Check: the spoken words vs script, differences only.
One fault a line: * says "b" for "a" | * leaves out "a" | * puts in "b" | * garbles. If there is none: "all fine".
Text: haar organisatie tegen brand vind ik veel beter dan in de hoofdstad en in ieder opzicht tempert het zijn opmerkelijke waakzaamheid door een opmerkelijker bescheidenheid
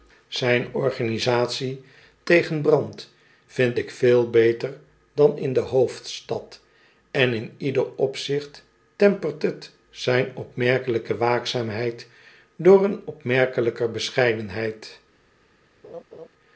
* says "zijn" for "haar"